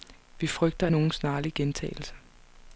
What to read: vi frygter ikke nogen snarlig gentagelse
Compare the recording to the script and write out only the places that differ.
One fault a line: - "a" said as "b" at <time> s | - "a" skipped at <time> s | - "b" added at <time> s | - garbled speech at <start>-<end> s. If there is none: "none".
- "ikke" skipped at 0.9 s